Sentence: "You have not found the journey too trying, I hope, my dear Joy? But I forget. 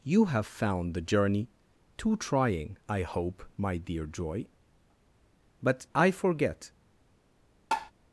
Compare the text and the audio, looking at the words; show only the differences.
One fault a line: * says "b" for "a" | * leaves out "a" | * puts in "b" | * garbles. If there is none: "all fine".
* leaves out "not"